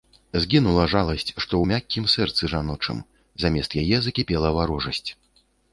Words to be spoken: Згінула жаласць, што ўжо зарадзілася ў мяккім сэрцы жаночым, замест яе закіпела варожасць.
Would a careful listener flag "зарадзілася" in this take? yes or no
yes